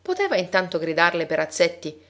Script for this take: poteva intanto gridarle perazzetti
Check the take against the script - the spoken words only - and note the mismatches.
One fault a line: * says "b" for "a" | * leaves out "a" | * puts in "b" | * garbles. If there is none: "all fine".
all fine